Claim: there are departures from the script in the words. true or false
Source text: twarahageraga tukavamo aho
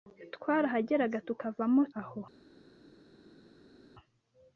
false